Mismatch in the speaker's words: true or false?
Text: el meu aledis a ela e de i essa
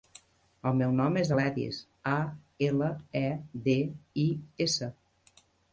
true